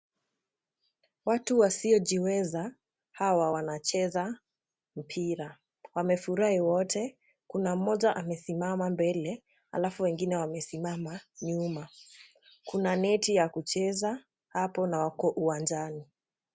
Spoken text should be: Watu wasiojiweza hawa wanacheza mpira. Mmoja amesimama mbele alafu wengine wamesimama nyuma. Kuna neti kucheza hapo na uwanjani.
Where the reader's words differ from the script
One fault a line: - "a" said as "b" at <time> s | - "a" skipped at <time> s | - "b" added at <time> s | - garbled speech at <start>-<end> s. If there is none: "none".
- "Wamefurahi wote Kuna" added at 5.9 s
- "ya" added at 13.3 s
- "wako" added at 15.0 s